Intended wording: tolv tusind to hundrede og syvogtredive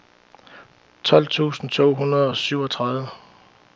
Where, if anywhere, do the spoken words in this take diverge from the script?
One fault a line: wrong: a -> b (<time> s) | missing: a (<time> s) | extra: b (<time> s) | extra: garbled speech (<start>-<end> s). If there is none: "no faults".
no faults